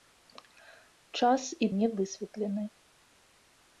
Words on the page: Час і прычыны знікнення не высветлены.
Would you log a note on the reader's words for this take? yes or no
yes